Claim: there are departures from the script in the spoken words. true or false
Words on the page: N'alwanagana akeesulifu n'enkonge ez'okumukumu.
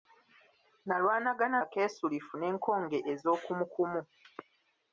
false